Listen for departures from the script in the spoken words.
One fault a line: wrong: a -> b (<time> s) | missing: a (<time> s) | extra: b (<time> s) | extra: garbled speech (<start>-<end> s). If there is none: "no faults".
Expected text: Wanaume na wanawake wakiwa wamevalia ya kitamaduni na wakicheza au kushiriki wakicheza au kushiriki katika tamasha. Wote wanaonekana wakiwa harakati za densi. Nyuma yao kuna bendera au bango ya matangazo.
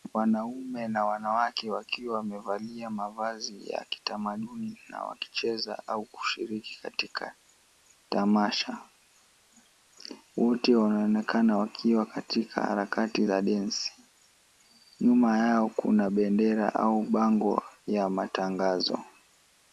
extra: mavazi (2.9 s)
missing: wakicheza au kushiriki (6.8 s)
extra: katika (12.0 s)